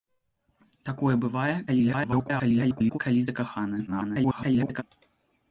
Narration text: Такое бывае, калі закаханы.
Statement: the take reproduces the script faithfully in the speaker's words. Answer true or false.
false